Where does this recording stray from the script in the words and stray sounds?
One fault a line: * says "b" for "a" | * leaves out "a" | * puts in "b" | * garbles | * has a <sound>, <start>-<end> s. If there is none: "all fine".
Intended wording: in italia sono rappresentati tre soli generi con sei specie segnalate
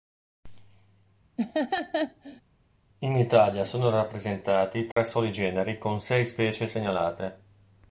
* has a laugh, 1.4-2.4 s
* has a dropout, 4.9-5.0 s